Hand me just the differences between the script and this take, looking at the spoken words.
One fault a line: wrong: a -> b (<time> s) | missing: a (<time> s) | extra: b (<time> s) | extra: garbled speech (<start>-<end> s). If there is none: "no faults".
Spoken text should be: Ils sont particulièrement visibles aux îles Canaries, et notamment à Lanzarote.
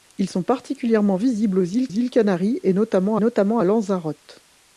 extra: îles (1.9 s)
extra: notamment (3.2 s)